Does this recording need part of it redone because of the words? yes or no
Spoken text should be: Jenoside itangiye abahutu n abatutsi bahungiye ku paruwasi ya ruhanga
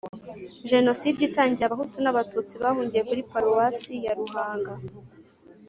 yes